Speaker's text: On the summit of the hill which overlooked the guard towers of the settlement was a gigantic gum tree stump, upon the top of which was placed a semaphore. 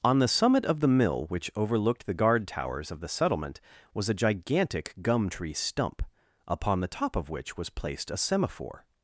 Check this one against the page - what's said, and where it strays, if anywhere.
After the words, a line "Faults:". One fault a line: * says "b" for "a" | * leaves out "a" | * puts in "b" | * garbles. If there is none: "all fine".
On the summit of the mill which overlooked the guard towers of the settlement was a gigantic gum tree stump, upon the top of which was placed a semaphore.
Faults:
* says "mill" for "hill"